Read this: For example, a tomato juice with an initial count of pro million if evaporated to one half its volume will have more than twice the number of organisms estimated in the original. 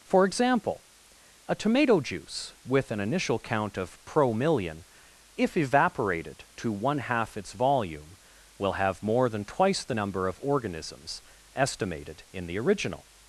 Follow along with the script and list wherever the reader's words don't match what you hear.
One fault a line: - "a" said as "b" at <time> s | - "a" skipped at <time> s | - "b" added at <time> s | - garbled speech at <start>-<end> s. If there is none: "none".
none